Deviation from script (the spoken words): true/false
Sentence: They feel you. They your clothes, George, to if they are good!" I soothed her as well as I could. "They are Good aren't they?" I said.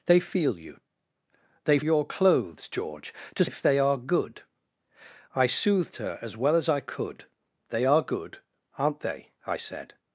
false